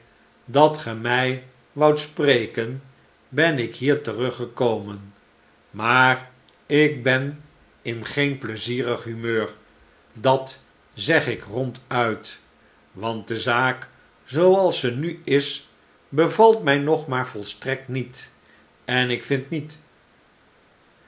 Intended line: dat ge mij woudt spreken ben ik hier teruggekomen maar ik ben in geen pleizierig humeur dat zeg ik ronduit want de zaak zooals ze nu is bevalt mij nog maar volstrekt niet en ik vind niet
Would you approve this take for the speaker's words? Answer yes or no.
yes